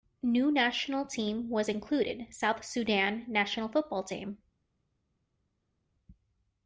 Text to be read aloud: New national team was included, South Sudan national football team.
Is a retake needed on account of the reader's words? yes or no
no